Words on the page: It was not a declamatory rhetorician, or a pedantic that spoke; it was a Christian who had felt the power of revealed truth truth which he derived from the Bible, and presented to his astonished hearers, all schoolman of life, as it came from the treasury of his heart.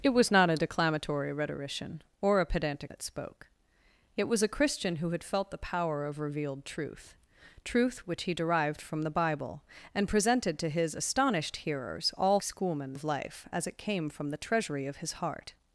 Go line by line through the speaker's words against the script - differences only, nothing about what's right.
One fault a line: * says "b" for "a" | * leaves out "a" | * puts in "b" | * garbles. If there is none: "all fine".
all fine